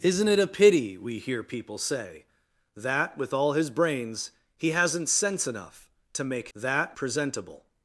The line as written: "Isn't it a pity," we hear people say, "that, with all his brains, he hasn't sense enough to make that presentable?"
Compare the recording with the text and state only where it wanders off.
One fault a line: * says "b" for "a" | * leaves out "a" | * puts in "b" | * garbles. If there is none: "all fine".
all fine